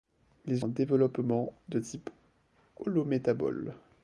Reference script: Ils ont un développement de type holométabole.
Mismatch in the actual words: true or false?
true